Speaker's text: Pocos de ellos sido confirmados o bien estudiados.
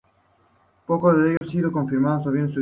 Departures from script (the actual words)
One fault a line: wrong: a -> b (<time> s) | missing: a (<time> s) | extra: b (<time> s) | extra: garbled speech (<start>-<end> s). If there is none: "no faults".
no faults